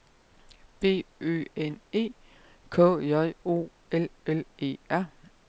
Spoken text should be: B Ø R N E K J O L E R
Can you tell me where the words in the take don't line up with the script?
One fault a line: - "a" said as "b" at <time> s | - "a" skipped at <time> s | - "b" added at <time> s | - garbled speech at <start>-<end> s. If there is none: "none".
- "R" skipped at 1.4 s
- "L" added at 4.3 s